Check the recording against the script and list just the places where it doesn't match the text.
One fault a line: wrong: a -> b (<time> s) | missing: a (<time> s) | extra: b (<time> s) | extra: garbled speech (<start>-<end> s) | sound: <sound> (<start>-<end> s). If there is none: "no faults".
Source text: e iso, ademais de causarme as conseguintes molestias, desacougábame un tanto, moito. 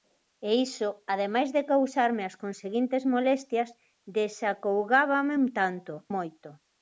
no faults